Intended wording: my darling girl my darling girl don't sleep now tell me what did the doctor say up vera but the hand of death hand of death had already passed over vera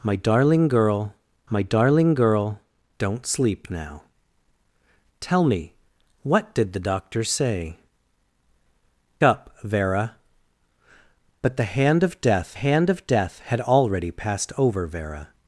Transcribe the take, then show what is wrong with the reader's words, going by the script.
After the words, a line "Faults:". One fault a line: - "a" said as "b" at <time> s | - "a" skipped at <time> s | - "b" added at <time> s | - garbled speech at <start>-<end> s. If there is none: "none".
my darling girl my darling girl don't sleep now tell me what did the doctor say up vera but the hand of death hand of death had already passed over vera
Faults:
none